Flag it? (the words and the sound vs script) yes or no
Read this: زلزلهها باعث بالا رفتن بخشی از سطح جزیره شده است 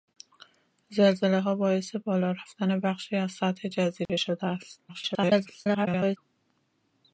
yes